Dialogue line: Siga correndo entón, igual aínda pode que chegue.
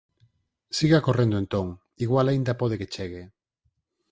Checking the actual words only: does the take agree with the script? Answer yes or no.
yes